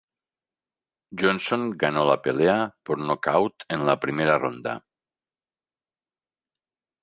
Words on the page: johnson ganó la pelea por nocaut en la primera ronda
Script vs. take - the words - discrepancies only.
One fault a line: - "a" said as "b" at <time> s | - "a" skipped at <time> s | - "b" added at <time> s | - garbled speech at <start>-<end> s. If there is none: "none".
none